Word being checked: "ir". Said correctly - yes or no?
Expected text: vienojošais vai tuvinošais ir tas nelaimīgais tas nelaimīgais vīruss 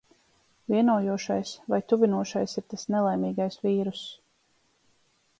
yes